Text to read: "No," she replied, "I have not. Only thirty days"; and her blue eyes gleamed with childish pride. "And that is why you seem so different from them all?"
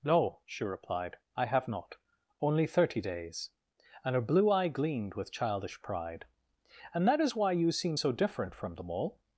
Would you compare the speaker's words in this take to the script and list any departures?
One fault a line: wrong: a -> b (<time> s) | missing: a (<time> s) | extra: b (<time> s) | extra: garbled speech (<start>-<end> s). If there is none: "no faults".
wrong: eyes -> eye (4.5 s)